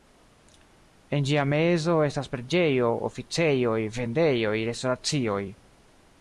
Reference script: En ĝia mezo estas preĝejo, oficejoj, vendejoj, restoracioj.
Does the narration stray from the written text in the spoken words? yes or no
no